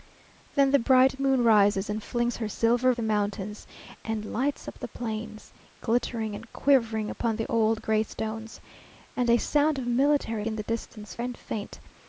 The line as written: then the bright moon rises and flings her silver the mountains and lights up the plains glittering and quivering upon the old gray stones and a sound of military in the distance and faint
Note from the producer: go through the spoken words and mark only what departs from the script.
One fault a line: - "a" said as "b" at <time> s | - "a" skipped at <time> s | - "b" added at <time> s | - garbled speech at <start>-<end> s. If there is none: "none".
none